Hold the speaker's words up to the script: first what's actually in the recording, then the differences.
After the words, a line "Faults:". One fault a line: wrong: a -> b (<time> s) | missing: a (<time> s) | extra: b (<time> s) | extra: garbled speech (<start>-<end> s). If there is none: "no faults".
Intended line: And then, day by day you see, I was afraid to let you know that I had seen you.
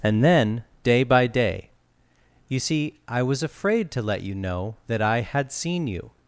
And then, day by day you see, I was afraid to let you know that I had seen you.
Faults:
no faults